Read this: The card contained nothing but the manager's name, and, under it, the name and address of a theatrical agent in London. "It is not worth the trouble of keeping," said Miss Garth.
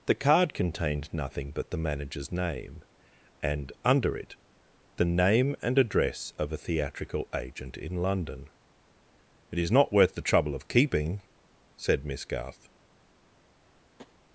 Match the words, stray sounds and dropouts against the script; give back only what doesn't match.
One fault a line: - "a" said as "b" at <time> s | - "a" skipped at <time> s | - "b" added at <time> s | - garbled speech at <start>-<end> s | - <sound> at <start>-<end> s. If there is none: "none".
- tap at 14.0-14.2 s